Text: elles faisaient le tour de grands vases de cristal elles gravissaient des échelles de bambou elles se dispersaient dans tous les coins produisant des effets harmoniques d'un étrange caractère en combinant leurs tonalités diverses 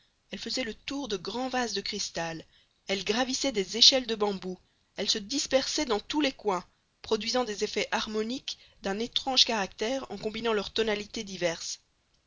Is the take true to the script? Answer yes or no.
yes